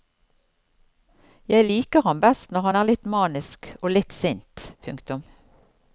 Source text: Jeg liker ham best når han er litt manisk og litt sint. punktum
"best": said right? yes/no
yes